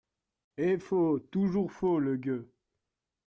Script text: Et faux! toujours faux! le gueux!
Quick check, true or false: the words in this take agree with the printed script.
true